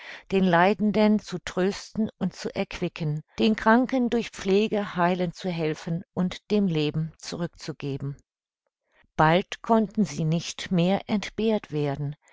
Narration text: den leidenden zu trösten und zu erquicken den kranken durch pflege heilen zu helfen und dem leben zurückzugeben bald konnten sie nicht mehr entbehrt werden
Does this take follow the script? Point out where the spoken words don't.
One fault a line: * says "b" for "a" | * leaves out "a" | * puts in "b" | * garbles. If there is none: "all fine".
all fine